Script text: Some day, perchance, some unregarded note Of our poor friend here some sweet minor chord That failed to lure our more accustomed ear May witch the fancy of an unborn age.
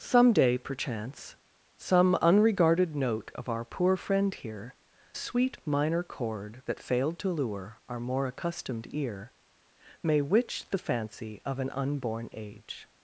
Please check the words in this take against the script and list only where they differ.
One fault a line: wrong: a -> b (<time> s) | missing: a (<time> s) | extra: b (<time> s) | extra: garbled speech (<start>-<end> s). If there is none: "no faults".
missing: some (4.7 s)